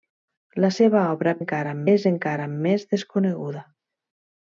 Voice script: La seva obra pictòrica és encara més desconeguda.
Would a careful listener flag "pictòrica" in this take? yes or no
yes